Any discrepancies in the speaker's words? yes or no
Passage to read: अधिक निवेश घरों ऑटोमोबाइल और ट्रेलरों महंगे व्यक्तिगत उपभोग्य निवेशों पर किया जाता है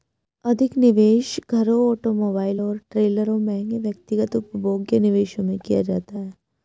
yes